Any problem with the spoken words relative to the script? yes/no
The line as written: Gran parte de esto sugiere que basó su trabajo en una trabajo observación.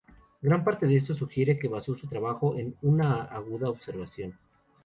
yes